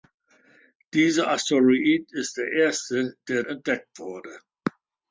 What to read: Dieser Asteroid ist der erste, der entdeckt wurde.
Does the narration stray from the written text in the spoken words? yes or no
no